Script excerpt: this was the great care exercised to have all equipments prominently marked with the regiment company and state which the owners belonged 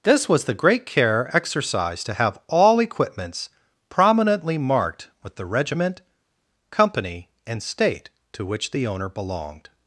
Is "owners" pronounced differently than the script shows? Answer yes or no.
yes